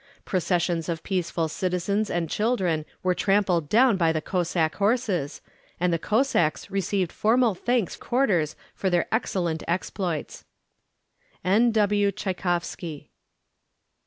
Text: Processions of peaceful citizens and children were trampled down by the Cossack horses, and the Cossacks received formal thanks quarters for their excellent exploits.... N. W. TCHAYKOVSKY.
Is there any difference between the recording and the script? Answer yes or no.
no